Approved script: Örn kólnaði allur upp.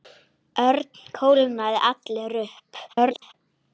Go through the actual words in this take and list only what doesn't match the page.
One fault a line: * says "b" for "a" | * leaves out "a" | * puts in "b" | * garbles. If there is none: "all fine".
* garbles